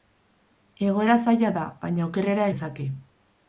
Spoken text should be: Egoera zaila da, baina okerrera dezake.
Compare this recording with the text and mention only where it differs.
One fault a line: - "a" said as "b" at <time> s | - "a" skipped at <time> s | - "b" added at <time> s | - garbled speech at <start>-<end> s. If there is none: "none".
none